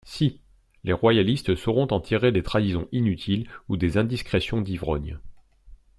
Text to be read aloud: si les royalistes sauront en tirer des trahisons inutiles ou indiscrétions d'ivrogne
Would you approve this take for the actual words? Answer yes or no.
no